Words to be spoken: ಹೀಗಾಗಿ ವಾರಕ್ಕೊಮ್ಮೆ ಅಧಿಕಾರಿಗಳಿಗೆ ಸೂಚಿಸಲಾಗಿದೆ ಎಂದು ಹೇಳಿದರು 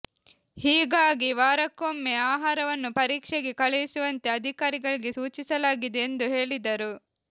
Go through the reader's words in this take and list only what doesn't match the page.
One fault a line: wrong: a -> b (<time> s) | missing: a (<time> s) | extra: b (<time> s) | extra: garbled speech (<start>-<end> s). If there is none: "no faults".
extra: ಆಹಾರವನ್ನು ಪರೀಕ್ಷೆಗೆ ಕಳುಹಿಸುವಂತೆ (2.3 s)